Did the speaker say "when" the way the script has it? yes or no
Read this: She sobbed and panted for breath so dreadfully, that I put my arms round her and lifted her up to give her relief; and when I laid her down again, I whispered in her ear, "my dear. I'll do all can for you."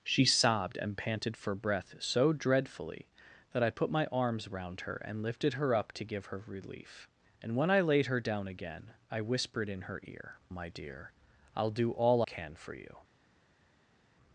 yes